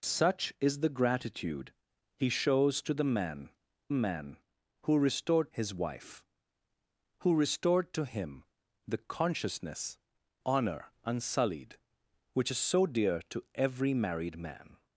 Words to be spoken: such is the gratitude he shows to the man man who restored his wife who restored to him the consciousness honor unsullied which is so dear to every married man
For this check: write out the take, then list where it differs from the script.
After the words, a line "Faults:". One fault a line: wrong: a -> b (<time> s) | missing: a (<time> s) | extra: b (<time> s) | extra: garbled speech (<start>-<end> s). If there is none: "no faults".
such is the gratitude he shows to the man man who restored his wife who restored to him the consciousness honor unsullied which is so dear to every married man
Faults:
no faults